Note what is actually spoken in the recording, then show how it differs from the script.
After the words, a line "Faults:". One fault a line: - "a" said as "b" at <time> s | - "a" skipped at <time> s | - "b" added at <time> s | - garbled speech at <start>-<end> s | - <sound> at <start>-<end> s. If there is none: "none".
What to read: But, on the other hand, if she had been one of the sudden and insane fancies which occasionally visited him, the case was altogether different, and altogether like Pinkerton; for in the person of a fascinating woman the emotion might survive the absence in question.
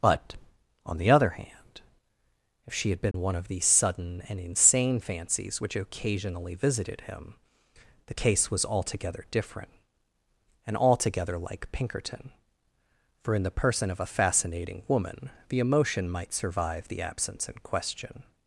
But, on the other hand, if she had been one of these sudden and insane fancies which occasionally visited him, the case was altogether different, and altogether like Pinkerton; for in the person of a fascinating woman the emotion might survive the absence in question.
Faults:
- dropout at 3.1-3.1 s
- "the" said as "these" at 3.5 s